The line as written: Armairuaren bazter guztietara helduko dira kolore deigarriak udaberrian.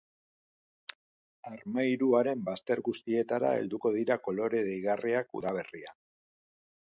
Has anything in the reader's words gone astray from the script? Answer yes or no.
no